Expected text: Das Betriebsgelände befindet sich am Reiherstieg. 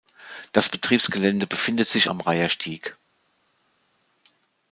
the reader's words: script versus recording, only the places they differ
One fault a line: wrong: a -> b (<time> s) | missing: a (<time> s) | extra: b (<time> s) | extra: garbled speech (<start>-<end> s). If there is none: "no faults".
no faults